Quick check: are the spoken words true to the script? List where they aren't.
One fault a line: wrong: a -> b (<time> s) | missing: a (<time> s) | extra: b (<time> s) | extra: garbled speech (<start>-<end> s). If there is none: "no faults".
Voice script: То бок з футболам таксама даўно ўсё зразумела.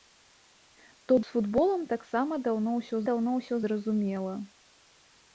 missing: бок (1.2 s)
extra: даўно ўсё (3.1 s)